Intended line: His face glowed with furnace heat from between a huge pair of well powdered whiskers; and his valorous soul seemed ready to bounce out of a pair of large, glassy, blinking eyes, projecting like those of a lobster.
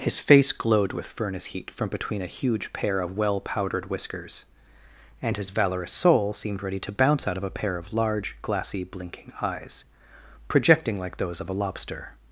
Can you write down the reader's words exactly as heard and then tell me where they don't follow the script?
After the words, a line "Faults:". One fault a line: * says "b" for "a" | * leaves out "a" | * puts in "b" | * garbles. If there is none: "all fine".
His face glowed with furnace heat from between a huge pair of well powdered whiskers; and his valorous soul seemed ready to bounce out of a pair of large, glassy, blinking eyes, projecting like those of a lobster.
Faults:
all fine